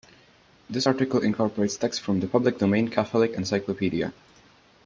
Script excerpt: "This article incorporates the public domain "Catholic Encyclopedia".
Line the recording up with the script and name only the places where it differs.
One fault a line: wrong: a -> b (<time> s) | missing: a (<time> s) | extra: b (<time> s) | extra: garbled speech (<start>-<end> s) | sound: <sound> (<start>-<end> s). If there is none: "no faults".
extra: text from (1.7 s)